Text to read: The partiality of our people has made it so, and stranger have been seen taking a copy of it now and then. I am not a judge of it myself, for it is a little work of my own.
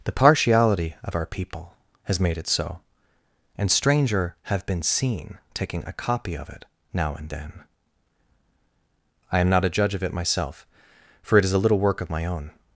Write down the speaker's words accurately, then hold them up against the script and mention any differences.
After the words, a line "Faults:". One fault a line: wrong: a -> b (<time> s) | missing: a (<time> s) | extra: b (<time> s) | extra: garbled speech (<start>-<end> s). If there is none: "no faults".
The partiality of our people has made it so, and stranger have been seen taking a copy of it now and then. I am not a judge of it myself, for it is a little work of my own.
Faults:
no faults